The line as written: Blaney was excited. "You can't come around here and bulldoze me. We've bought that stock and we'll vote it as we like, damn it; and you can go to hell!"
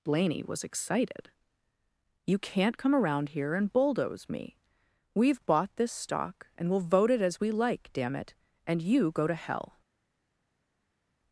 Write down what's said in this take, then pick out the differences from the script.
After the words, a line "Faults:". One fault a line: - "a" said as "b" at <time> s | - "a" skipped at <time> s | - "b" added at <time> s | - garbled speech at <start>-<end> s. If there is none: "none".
Blaney was excited. "You can't come around here and bulldoze me. We've bought this stock and we'll vote it as we like, damn it; and you go to hell!"
Faults:
- "that" said as "this" at 5.8 s
- "can" skipped at 9.1 s